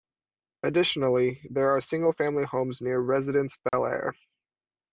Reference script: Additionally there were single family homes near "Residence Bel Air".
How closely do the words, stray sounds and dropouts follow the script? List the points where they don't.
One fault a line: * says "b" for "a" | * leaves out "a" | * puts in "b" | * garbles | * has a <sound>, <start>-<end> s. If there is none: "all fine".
* says "are" for "were"
* has a dropout, 3.7-3.7 s